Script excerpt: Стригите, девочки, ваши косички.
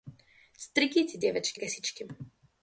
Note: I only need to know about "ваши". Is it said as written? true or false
false